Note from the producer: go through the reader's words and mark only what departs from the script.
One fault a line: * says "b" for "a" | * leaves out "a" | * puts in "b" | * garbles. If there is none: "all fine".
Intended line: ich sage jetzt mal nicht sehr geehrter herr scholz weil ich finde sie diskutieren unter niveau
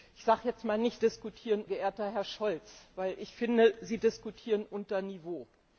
* says "diskutieren" for "sehr"